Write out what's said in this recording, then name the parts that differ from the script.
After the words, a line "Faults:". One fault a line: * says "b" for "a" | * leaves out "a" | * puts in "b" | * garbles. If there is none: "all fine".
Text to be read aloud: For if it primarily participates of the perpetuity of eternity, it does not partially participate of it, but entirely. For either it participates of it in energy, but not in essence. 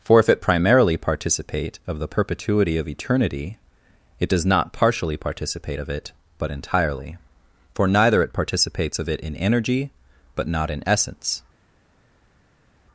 For if it primarily participate of the perpetuity of eternity, it does not partially participate of it, but entirely. For neither it participates of it in energy, but not in essence.
Faults:
* says "participate" for "participates"
* says "neither" for "either"